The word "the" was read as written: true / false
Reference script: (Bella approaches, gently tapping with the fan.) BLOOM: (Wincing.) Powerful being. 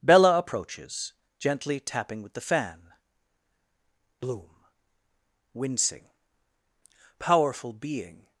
true